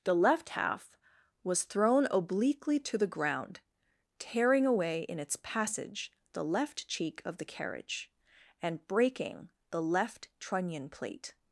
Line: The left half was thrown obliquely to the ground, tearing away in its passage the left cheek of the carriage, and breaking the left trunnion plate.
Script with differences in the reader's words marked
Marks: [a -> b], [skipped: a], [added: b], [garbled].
The left half was thrown obliquely to the ground, tearing away in its passage the left cheek of the carriage, and breaking the left trunnion plate.